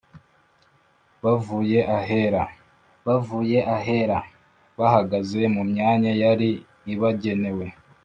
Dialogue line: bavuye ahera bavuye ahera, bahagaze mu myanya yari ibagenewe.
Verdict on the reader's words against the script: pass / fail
pass